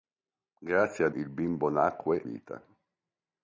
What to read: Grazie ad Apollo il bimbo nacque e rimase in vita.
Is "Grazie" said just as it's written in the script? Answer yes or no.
yes